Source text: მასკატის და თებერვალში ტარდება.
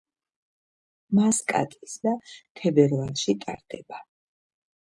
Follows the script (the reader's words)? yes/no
yes